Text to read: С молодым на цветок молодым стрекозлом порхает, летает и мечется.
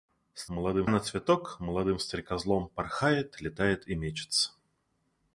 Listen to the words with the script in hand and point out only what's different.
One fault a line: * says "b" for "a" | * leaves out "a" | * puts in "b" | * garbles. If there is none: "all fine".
all fine